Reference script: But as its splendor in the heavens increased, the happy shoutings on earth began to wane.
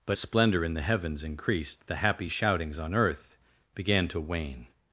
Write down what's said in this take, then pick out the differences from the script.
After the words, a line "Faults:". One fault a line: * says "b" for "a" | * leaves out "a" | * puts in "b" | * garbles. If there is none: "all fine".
But splendor in the heavens increased, the happy shoutings on earth began to wane.
Faults:
* leaves out "as its"